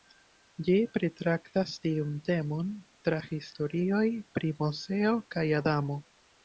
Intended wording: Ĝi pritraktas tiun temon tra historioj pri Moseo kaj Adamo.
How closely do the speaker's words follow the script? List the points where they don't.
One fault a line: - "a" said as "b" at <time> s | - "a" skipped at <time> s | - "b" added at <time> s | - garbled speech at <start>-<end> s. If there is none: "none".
none